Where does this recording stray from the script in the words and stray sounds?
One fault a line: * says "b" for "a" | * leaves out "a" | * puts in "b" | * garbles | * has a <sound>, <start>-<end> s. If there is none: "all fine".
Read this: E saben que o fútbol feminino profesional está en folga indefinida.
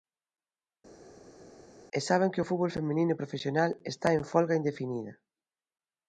all fine